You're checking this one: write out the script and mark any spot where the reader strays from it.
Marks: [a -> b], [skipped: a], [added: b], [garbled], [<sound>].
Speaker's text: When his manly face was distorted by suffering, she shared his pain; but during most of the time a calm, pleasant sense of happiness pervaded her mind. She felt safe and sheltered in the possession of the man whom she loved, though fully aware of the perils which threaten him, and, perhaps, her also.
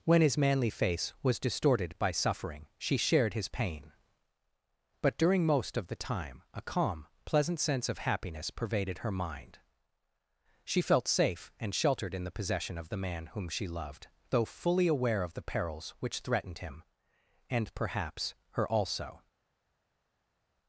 When his manly face was distorted by suffering, she shared his pain; but during most of the time a calm, pleasant sense of happiness pervaded her mind. She felt safe and sheltered in the possession of the man whom she loved, though fully aware of the perils which [threaten -> threatened] him, and, perhaps, her also.